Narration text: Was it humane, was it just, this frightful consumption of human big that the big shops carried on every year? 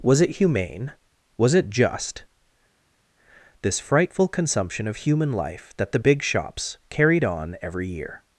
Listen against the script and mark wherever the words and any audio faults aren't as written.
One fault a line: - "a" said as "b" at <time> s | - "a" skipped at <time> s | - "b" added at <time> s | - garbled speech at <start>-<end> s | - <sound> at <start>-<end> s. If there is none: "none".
- "big" said as "life" at 5.3 s